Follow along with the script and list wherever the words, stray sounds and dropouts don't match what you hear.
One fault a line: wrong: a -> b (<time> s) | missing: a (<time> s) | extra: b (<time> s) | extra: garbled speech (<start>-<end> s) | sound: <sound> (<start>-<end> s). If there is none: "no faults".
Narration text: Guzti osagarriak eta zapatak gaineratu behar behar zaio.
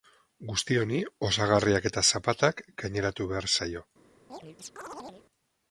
extra: honi (0.8 s)
missing: behar (3.5 s)
sound: chirp (4.3-5.3 s)